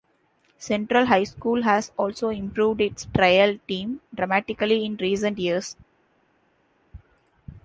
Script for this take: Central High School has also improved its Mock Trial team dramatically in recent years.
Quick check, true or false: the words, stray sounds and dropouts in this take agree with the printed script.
false